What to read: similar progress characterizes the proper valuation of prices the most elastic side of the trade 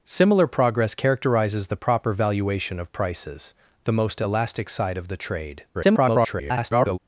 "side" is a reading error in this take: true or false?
false